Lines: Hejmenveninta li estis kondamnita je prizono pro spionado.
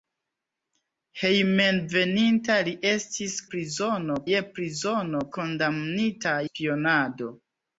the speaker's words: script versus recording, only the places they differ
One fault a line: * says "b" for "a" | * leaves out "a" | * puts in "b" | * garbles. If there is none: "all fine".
* says "prizono" for "kondamnita"
* says "kondamnita" for "pro"